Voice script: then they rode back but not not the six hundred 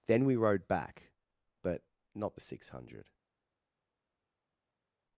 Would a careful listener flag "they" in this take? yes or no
yes